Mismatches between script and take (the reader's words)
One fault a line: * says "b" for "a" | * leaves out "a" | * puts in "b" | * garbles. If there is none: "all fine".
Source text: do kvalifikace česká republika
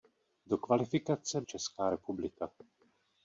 all fine